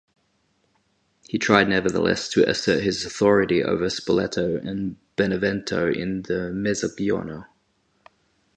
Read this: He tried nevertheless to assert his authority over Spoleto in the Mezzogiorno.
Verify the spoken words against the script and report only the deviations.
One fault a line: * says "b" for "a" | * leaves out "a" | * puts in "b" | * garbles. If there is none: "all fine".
* puts in "and Benevento"